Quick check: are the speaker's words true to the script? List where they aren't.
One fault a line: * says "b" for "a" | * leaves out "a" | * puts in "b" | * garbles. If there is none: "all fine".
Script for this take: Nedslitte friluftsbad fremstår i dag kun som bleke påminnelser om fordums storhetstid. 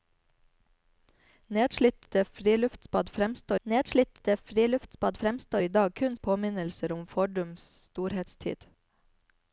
* puts in "nedslitte friluftsbad fremstår"
* leaves out "som bleke"